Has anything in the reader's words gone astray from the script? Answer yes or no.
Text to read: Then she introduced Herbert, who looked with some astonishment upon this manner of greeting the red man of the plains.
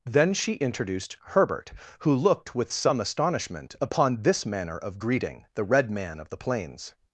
no